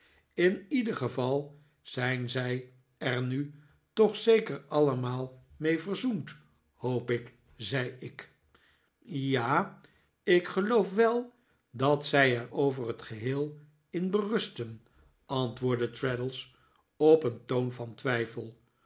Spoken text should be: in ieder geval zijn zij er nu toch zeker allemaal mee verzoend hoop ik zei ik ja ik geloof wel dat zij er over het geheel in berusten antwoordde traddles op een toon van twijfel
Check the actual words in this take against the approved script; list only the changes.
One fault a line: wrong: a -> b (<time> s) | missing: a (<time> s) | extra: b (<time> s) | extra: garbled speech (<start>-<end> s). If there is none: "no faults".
no faults